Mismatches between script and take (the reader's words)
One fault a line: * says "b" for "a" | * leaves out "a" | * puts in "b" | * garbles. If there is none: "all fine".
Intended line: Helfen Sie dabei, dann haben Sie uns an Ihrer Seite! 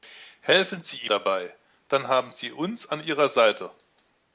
all fine